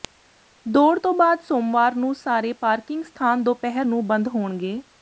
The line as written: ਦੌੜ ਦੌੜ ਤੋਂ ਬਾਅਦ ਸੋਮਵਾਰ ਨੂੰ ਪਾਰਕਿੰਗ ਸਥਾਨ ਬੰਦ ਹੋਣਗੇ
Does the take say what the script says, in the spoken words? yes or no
no